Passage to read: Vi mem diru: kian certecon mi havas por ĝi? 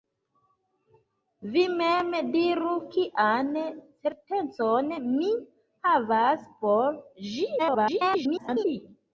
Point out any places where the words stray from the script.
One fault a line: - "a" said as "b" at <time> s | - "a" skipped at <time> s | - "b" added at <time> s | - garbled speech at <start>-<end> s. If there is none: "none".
- garbled speech at 7.6-8.7 s